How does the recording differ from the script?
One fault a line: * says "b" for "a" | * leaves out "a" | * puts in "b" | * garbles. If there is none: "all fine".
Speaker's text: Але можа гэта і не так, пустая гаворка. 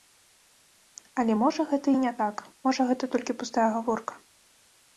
* puts in "можа гэта толькі"